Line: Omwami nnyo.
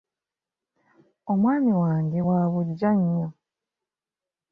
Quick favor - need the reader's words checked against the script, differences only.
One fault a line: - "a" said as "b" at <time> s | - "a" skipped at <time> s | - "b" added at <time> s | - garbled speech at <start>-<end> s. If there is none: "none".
- "wange wa buggya" added at 1.8 s